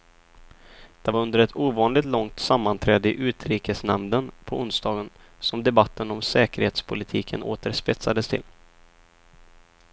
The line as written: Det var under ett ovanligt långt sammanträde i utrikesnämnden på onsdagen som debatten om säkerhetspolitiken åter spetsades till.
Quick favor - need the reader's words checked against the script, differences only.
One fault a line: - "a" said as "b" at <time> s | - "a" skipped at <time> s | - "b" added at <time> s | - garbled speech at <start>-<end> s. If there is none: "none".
none